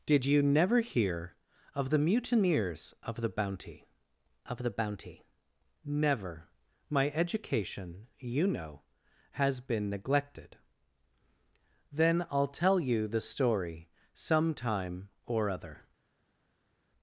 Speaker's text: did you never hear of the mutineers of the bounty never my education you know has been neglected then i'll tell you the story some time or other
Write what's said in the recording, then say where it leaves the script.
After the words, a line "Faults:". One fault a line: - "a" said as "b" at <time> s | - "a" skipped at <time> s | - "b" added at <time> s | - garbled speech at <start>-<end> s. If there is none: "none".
did you never hear of the mutineers of the bounty of the bounty never my education you know has been neglected then i'll tell you the story some time or other
Faults:
- "of the bounty" added at 4.5 s